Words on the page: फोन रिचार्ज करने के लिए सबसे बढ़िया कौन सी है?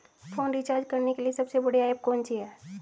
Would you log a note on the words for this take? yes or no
yes